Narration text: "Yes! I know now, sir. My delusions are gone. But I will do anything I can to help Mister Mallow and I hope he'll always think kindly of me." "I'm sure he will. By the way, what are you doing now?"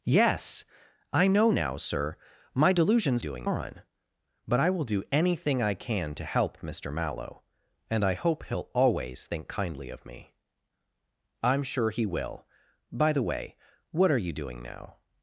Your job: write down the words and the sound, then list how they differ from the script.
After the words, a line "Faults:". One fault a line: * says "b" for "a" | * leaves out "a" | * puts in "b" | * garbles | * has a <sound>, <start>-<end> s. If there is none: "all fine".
"Yes! I know now, sir. My delusions doing gone. But I will do anything I can to help Mister Mallow and I hope he'll always think kindly of me." "I'm sure he will. By the way, what are you doing now?"
Faults:
* says "doing" for "are"